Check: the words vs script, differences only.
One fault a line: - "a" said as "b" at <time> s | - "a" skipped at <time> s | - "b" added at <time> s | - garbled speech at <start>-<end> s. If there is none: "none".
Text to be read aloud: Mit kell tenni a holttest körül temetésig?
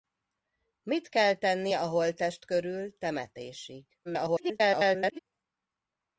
- garbled speech at 4.0-5.2 s